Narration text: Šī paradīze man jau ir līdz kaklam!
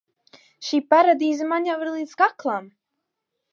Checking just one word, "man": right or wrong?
right